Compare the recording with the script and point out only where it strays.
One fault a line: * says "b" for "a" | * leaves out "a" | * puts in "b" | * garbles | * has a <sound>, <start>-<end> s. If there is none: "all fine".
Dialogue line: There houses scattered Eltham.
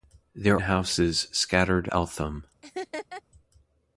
* has a laugh, 2.6-3.2 s